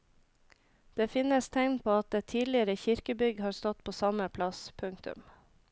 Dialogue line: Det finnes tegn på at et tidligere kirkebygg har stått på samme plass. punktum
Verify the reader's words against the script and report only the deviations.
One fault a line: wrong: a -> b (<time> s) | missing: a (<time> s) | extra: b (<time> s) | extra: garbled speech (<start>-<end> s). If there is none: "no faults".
no faults